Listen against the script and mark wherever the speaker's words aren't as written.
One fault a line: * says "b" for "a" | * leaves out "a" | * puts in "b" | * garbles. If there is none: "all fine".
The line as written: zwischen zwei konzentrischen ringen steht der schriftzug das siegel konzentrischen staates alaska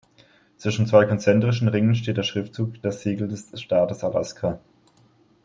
* says "des" for "konzentrischen"